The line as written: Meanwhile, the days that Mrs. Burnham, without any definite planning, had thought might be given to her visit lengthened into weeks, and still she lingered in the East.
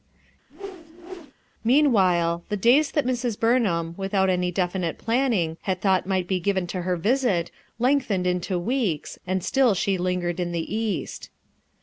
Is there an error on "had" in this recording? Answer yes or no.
no